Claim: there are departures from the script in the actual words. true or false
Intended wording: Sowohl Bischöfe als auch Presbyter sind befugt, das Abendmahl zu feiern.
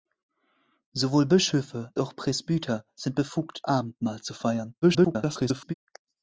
true